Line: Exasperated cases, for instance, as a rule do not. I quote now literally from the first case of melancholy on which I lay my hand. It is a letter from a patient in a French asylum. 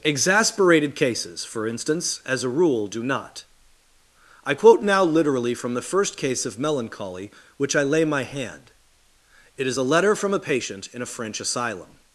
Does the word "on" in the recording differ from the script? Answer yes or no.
yes